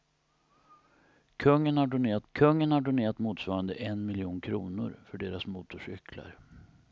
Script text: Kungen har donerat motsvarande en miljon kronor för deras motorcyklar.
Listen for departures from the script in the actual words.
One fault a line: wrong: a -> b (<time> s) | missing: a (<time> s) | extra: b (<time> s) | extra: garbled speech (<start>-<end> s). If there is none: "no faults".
extra: kungen har donerat (2.3 s)